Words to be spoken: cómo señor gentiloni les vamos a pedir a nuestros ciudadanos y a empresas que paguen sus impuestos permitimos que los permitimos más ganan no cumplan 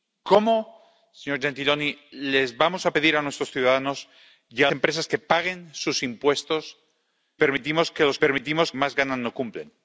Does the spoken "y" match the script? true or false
true